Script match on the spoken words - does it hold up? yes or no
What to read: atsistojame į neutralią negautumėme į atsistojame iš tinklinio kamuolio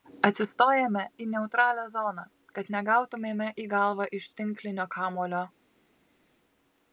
no